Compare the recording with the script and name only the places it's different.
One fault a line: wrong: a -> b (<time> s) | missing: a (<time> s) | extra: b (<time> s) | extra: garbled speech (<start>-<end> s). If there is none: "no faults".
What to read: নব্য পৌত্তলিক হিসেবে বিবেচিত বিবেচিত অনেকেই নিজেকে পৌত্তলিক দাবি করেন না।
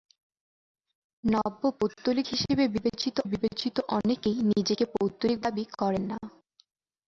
no faults